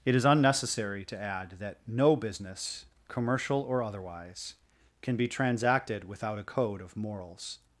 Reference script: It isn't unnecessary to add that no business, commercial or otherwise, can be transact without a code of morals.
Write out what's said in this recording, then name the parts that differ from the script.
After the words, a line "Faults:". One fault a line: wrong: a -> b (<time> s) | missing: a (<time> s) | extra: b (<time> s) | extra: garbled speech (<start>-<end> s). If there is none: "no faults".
It is unnecessary to add that no business, commercial or otherwise, can be transacted without a code of morals.
Faults:
wrong: isn't -> is (0.1 s)
wrong: transact -> transacted (5.3 s)